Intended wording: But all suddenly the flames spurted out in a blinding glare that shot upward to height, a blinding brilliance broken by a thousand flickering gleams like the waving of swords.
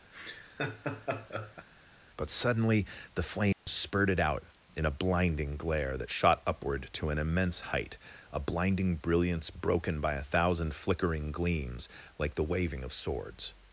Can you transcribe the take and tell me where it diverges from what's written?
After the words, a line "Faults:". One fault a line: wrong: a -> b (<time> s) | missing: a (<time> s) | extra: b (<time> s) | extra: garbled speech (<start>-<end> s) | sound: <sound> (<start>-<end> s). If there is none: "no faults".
But suddenly the flames spurted out in a blinding glare that shot upward to an immense height, a blinding brilliance broken by a thousand flickering gleams like the waving of swords.
Faults:
sound: laugh (0.1-1.7 s)
missing: all (2.3 s)
sound: dropout (3.5-3.7 s)
extra: an immense (7.1 s)